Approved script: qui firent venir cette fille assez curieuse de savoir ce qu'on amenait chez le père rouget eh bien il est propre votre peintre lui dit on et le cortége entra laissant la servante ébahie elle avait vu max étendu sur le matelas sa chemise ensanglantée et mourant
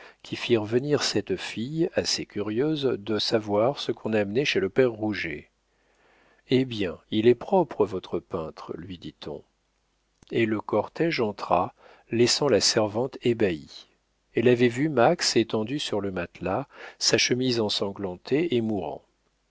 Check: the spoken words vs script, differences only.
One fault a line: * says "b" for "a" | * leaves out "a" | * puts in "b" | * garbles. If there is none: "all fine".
all fine